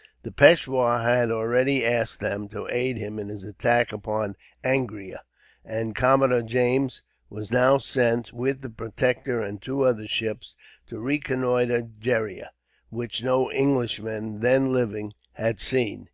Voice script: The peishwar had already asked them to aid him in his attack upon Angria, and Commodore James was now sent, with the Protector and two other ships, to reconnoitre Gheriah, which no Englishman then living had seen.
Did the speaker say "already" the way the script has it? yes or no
yes